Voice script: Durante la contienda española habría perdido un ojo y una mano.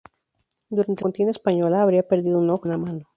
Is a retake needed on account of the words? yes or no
yes